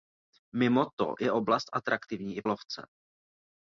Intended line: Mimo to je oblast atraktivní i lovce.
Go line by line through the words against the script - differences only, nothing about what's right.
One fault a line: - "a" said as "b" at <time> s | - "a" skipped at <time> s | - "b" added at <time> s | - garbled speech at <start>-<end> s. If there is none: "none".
none